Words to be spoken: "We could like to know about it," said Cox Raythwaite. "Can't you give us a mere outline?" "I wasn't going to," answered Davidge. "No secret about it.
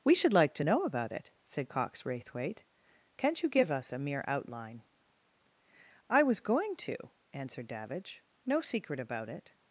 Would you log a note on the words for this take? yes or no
yes